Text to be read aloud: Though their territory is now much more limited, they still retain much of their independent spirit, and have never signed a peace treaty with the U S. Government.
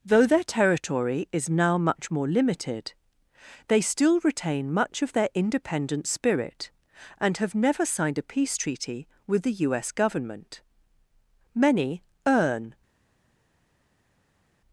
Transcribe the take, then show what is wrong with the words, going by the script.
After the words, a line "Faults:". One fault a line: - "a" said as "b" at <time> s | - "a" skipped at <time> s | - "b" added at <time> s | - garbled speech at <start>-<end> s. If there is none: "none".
Though their territory is now much more limited, they still retain much of their independent spirit, and have never signed a peace treaty with the U S. Government. Many earn
Faults:
- "Many earn" added at 11.5 s